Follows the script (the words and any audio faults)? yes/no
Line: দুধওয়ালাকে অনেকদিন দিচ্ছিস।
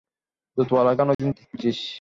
no